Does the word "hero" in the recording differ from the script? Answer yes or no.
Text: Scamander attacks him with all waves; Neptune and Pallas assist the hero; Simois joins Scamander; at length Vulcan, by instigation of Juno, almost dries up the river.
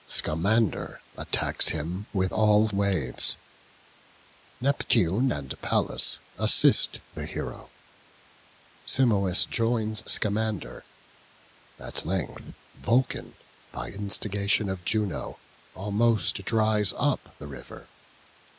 no